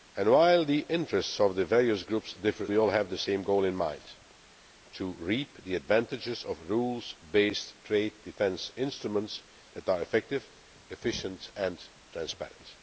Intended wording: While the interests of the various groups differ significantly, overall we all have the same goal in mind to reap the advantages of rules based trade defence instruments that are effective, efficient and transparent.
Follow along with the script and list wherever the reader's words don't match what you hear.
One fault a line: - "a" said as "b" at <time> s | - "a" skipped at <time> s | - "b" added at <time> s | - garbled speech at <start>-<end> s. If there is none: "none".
- "significantly overall" skipped at 2.7 s